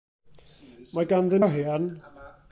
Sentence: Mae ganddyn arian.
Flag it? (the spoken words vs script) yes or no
no